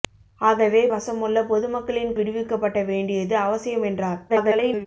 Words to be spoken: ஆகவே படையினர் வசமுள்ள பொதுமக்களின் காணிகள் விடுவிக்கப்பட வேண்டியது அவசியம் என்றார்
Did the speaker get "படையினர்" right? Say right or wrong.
wrong